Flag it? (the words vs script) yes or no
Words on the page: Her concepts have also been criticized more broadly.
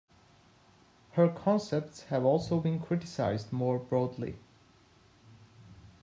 no